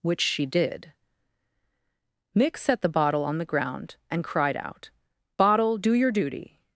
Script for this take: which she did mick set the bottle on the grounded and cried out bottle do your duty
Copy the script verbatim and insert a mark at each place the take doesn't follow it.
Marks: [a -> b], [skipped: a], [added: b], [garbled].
which she did mick set the bottle on the [grounded -> ground] and cried out bottle do your duty